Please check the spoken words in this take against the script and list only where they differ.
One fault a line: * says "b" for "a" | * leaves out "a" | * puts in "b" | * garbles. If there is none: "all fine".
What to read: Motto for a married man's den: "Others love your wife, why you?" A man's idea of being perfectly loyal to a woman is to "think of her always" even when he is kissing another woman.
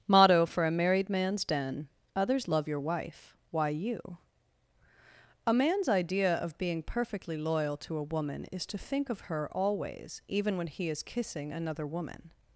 all fine